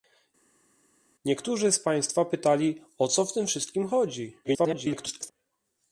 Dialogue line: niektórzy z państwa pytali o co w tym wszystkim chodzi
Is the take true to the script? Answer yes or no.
no